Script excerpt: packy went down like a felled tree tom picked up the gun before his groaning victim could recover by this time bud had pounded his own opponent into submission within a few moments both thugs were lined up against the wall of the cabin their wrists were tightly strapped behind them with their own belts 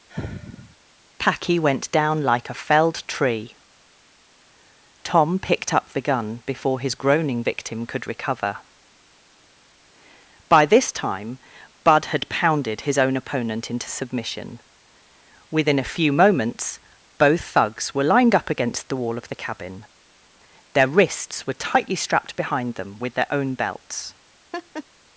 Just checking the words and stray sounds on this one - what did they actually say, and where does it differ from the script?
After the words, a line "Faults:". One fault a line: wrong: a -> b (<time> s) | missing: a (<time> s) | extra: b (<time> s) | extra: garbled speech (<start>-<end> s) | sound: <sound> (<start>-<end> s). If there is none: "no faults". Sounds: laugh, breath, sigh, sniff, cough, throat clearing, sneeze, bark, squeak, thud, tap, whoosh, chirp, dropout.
packy went down like a felled tree tom picked up the gun before his groaning victim could recover by this time bud had pounded his own opponent into submission within a few moments both thugs were lined up against the wall of the cabin their wrists were tightly strapped behind them with their own belts
Faults:
sound: sigh (0.1-0.8 s)
sound: laugh (24.5-24.8 s)